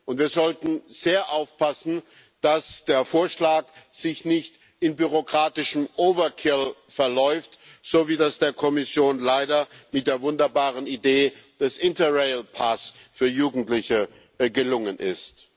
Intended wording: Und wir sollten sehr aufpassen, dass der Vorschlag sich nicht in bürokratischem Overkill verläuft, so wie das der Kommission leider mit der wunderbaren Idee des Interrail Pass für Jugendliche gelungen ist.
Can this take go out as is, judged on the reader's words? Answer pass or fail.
pass